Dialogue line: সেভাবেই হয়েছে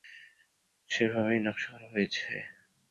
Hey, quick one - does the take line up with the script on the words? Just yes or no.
no